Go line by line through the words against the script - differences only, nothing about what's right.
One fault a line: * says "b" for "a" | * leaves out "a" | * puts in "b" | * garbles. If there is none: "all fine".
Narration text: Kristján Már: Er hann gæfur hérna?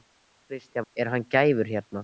* leaves out "Már"